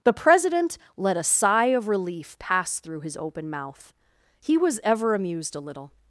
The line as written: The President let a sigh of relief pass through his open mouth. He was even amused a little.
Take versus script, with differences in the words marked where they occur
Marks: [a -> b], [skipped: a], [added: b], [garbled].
The President let a sigh of relief pass through his open mouth. He was [even -> ever] amused a little.